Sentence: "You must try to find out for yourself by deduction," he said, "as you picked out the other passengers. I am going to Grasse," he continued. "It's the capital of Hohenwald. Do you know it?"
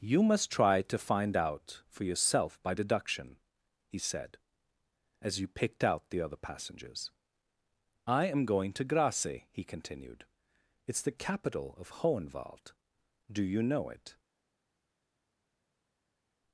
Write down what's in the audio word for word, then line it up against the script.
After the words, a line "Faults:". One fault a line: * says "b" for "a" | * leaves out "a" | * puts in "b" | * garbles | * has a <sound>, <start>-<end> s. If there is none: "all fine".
"You must try to find out for yourself by deduction," he said, "as you picked out the other passengers. I am going to Grasse," he continued. "It's the capital of Hohenwald. Do you know it?"
Faults:
all fine